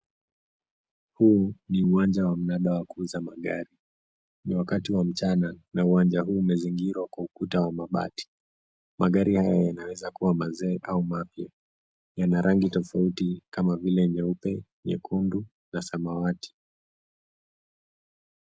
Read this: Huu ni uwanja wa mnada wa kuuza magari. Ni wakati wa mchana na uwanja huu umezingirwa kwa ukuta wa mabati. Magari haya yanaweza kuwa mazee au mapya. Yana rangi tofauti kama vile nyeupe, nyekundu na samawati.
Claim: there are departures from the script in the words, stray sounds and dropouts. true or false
false